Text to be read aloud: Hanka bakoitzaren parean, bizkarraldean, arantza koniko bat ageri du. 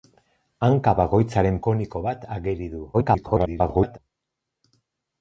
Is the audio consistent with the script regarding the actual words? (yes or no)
no